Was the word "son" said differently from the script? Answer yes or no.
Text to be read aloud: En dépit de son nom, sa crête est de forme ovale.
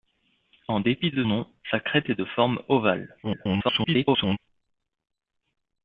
yes